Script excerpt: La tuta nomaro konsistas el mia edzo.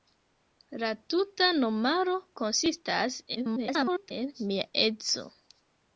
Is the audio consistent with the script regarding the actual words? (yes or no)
no